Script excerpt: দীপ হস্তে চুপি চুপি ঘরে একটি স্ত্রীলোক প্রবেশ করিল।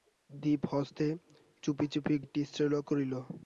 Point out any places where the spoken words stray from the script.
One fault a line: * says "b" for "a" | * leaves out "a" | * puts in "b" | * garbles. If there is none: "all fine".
* leaves out "ঘরে"
* leaves out "প্রবেশ"